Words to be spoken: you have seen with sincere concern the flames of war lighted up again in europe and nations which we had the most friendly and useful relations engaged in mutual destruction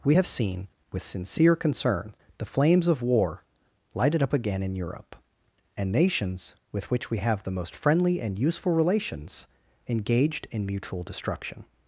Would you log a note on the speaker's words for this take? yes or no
yes